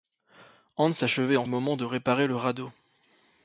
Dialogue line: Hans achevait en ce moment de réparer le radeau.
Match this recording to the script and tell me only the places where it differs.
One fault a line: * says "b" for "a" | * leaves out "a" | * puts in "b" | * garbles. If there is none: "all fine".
* leaves out "ce"